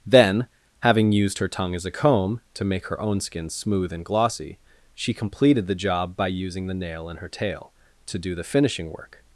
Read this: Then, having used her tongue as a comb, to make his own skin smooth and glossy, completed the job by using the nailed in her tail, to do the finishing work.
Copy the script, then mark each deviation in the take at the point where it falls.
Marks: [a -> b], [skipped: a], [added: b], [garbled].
Then, having used her tongue as a comb, to make [his -> her] own skin smooth and glossy, [added: she] completed the job by using the [nailed -> nail] in her tail, to do the finishing work.